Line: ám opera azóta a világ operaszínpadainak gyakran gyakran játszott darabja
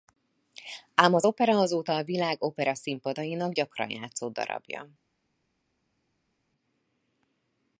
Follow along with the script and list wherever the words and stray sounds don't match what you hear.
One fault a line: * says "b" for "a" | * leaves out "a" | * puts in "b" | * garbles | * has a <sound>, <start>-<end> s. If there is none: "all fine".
* puts in "az"
* leaves out "gyakran"